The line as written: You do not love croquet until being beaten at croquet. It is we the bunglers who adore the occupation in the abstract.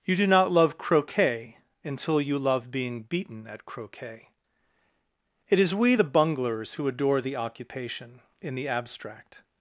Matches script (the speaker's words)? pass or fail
fail